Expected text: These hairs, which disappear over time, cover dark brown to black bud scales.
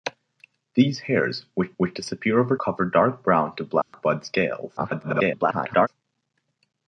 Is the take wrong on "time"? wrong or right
wrong